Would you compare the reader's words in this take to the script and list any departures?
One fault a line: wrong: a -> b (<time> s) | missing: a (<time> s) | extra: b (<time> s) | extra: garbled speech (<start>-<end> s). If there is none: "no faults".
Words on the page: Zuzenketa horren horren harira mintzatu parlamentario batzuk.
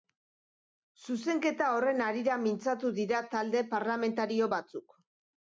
missing: horren (2.0 s)
extra: dira talde (3.0 s)